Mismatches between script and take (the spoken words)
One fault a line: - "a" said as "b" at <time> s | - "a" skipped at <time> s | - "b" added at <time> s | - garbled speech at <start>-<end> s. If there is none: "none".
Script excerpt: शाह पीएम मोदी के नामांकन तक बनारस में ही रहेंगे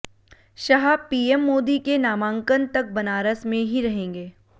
none